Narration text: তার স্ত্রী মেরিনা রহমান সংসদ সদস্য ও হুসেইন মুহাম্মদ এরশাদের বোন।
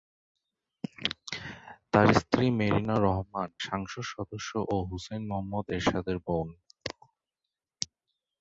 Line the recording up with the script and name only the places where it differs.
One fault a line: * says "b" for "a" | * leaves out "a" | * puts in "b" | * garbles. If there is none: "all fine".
all fine